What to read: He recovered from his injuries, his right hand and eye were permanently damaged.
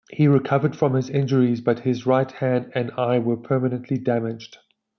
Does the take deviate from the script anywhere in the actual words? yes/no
yes